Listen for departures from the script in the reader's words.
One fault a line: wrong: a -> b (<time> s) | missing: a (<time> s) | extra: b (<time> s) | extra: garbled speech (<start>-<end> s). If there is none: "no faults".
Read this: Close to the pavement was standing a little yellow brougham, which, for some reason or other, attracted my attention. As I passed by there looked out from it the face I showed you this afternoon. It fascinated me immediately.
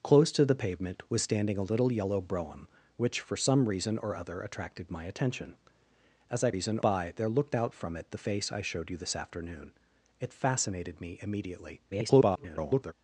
wrong: passed -> reason (6.5 s)
extra: garbled speech (11.9-12.9 s)